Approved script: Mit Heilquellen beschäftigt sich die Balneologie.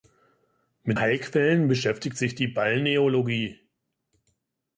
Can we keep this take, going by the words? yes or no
yes